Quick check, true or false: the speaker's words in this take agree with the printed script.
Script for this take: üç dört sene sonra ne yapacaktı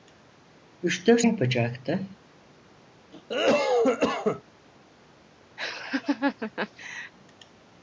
false